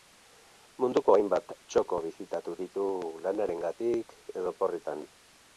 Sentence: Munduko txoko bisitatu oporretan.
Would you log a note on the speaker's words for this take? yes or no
yes